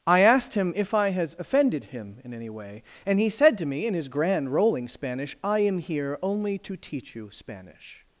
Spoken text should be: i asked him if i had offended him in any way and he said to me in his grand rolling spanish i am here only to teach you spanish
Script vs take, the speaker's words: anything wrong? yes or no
yes